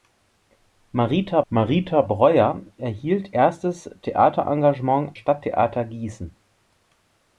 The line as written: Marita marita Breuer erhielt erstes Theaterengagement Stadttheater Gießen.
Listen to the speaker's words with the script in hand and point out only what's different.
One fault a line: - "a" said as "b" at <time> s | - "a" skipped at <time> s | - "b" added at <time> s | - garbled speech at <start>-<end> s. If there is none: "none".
none